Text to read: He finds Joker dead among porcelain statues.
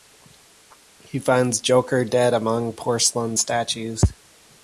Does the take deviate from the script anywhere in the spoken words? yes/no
no